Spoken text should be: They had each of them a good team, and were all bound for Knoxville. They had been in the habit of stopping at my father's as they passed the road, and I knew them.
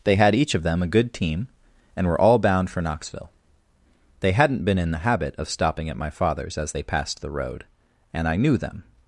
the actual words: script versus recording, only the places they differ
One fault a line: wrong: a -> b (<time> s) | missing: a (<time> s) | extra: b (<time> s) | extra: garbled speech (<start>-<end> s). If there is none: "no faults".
wrong: had -> hadn't (4.3 s)